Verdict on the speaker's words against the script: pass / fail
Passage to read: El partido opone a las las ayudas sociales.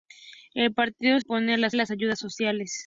pass